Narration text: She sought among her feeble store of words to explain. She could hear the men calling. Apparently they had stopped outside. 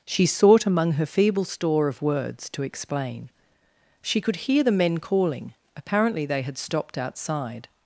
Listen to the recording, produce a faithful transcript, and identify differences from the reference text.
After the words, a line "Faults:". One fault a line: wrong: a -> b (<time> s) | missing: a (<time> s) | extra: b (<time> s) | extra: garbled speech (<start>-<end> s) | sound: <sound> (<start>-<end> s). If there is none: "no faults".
She sought among her feeble store of words to explain. She could hear the men calling. Apparently they had stopped outside.
Faults:
no faults